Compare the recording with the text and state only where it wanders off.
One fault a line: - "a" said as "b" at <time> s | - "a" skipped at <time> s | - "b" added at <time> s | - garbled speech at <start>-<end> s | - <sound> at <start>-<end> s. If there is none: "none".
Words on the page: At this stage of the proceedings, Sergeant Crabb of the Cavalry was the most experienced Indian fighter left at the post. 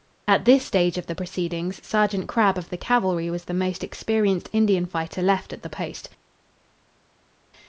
none